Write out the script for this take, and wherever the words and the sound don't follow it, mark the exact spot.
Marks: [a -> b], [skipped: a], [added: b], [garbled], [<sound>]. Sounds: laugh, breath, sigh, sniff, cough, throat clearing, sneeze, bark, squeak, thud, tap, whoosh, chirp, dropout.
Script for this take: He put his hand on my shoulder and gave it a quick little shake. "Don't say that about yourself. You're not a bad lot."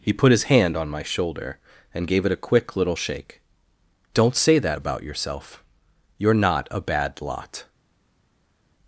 He put his hand on my shoulder and gave it a quick little shake. "Don't say that about yourself. You're not a bad lot."